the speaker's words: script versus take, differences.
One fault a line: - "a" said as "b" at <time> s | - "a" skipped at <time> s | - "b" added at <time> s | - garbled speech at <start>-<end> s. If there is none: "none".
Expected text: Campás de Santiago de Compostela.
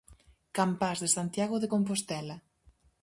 none